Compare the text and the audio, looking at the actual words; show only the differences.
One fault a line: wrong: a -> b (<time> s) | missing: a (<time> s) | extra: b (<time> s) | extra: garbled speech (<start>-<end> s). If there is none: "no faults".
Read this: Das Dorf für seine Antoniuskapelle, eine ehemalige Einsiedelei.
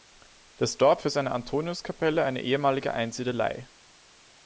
no faults